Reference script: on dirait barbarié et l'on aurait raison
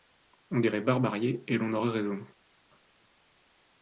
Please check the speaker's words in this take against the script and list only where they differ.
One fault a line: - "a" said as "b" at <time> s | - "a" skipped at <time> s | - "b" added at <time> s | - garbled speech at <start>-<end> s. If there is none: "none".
none